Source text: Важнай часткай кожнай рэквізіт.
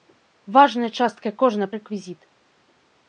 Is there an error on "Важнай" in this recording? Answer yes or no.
no